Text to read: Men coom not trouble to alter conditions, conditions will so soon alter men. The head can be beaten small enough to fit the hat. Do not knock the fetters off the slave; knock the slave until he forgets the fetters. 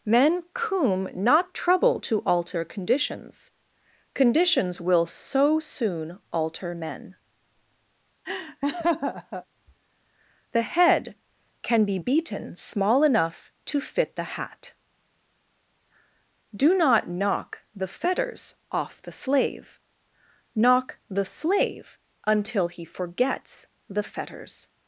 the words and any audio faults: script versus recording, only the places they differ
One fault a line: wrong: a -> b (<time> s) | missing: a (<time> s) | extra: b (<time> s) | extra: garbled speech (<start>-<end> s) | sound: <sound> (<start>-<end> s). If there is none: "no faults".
sound: laugh (8.2-9.4 s)